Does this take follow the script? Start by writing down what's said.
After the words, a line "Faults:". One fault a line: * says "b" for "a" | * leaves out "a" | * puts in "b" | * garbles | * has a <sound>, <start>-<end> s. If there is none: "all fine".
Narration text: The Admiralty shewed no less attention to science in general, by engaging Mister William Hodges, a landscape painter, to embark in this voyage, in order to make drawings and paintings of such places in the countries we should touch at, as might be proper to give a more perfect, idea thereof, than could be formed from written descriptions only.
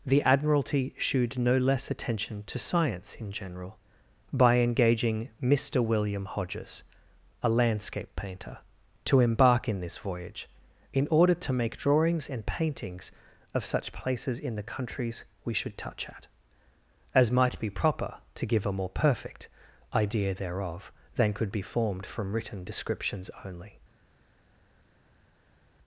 The Admiralty shewed no less attention to science in general, by engaging Mister William Hodges, a landscape painter, to embark in this voyage, in order to make drawings and paintings of such places in the countries we should touch at, as might be proper to give a more perfect, idea thereof, than could be formed from written descriptions only.
Faults:
all fine